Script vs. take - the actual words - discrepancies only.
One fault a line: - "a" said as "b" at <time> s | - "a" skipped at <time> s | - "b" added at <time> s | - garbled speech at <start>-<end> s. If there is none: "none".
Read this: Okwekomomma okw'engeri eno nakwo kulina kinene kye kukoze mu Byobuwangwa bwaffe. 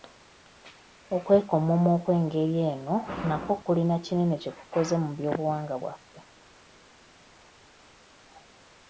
none